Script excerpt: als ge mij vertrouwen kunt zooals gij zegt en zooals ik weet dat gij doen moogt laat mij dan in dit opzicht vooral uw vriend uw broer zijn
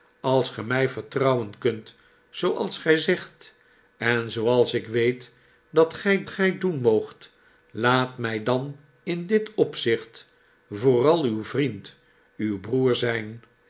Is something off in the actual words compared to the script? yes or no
yes